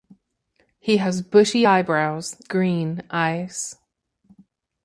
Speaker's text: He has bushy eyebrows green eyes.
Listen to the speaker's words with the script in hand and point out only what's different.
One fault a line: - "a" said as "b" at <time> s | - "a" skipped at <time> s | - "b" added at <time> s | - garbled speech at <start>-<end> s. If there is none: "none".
none